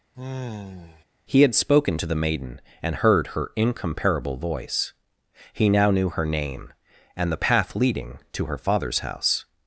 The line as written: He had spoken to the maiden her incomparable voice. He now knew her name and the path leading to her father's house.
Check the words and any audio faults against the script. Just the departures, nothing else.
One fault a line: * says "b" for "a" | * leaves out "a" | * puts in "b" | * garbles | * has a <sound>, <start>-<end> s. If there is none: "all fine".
* has a sigh, 0.1-1.0 s
* puts in "and heard"